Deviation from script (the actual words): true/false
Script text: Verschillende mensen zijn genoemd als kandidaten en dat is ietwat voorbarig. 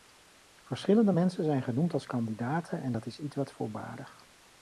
false